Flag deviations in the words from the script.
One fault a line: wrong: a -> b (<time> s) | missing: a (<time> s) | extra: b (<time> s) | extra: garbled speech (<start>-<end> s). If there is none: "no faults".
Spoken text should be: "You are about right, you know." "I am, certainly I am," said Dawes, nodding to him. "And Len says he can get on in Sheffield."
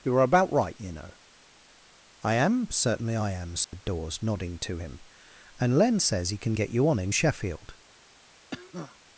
extra: you (6.7 s)